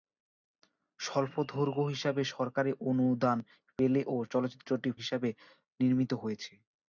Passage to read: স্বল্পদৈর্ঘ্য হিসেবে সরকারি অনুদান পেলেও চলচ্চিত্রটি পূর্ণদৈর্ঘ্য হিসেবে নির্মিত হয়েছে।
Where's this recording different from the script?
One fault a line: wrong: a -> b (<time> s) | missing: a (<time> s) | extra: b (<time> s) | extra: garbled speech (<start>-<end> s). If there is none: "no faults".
missing: পূর্ণদৈর্ঘ্য (4.9 s)